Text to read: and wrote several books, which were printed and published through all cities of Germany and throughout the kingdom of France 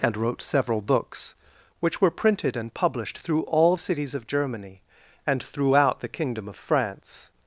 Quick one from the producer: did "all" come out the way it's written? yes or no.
yes